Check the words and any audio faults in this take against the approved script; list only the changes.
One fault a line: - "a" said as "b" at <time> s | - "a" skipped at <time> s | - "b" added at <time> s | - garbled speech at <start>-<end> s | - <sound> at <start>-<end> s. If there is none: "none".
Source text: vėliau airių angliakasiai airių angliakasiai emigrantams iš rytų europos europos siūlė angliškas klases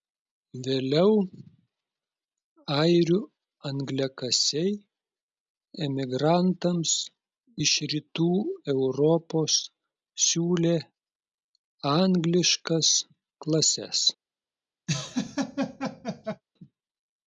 - "airių angliakasiai" skipped at 4.7 s
- "europos" skipped at 9.6 s
- laugh at 14.9-16.4 s